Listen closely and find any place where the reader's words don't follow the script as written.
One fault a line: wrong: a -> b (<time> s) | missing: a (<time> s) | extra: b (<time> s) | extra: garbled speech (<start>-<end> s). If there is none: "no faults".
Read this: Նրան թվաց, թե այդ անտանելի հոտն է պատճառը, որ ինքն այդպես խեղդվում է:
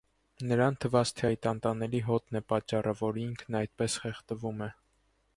no faults